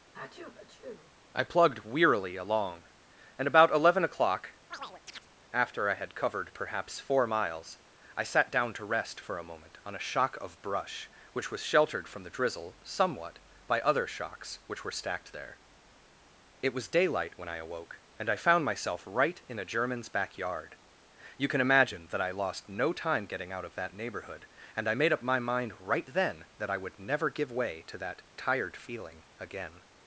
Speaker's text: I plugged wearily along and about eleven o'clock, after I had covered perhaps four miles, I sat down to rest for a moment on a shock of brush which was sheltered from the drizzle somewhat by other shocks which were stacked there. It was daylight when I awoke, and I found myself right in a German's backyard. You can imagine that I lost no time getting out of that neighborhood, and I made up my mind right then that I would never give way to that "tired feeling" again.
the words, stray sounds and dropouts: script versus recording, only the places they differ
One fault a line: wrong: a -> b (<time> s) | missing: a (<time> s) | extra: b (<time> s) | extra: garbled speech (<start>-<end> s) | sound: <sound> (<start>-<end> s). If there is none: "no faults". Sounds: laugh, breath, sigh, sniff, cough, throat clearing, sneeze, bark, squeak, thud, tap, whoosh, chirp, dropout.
sound: sneeze (0.1-1.1 s)
sound: chirp (4.7-5.3 s)